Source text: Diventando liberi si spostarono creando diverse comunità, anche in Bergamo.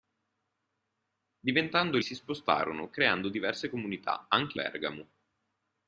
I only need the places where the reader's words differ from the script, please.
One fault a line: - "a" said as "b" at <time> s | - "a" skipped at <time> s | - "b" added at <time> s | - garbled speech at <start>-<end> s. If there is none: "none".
- "liberi" skipped at 2.0 s
- "in" skipped at 4.6 s